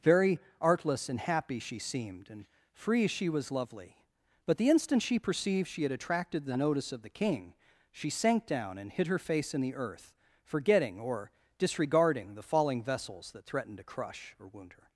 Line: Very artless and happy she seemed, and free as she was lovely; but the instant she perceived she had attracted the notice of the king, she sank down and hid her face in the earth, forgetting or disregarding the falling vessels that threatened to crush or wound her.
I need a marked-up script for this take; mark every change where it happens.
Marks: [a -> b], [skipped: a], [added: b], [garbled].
Very artless and happy she seemed, and free [skipped: as] she was lovely; but the instant she perceived she had attracted the notice of the king, she sank down and hid her face in the earth, forgetting or disregarding the falling vessels that threatened to crush or wound her.